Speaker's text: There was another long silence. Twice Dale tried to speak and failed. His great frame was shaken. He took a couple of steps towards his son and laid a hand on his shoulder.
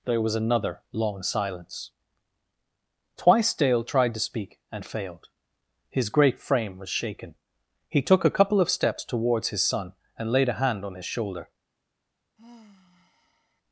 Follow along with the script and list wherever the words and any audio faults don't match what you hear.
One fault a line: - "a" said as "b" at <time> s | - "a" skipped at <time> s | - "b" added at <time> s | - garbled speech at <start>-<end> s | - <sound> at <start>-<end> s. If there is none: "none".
- sigh at 12.4-13.6 s